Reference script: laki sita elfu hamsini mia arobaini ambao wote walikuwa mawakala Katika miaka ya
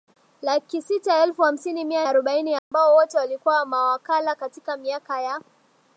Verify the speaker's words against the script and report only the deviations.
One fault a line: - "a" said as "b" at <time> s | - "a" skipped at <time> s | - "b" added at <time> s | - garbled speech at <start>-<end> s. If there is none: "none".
none